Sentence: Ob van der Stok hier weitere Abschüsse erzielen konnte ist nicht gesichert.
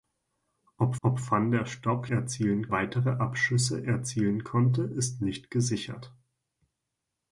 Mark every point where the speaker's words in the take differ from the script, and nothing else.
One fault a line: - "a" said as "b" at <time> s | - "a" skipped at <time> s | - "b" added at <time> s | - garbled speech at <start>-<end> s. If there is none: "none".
- "ob" added at 1.0 s
- "hier" said as "erzielen" at 2.1 s